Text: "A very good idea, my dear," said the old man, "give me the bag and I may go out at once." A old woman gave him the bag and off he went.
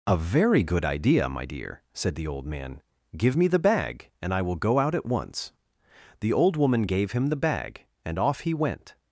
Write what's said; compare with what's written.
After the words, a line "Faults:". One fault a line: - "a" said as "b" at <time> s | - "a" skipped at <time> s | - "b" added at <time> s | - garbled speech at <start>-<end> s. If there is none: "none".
"A very good idea, my dear," said the old man, "give me the bag and I will go out at once." The old woman gave him the bag and off he went.
Faults:
- "may" said as "will" at 4.4 s
- "A" said as "The" at 6.2 s